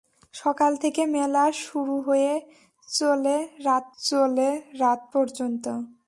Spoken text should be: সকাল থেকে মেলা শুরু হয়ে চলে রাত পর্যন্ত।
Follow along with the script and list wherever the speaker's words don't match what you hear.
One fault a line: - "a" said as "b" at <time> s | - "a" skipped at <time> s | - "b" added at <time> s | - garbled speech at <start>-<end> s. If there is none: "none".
- "চলে রাত" added at 4.0 s